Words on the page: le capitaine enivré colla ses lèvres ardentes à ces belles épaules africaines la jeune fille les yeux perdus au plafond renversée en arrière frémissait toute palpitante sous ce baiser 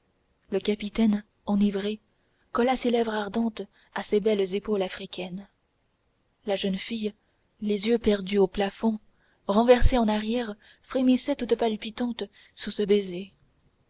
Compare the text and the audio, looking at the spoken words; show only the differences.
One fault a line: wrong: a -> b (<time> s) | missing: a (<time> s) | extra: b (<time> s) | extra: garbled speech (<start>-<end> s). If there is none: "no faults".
no faults